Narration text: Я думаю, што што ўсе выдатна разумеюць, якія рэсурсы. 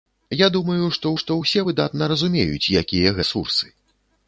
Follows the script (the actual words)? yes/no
yes